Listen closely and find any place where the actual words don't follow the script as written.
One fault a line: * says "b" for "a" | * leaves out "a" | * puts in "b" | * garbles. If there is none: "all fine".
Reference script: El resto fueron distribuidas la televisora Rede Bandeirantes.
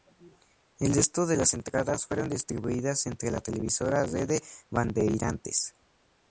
* puts in "de las entradas"
* puts in "entre"